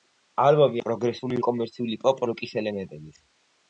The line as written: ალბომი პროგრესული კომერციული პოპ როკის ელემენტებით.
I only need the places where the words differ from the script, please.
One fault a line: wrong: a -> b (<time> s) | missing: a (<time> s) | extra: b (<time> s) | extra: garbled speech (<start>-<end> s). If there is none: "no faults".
no faults